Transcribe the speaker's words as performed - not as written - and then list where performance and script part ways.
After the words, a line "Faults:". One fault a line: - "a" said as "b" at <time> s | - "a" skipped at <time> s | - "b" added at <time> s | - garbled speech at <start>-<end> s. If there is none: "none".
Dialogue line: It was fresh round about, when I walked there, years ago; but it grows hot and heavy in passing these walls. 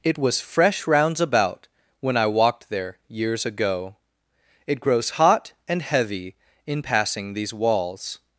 It was fresh rounds about, when I walked there, years ago; it grows hot and heavy in passing these walls.
Faults:
- "round" said as "rounds" at 0.9 s
- "but" skipped at 4.0 s